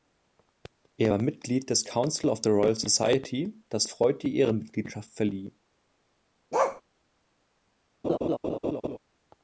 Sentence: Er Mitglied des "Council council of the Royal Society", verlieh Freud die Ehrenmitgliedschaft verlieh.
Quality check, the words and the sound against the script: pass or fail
fail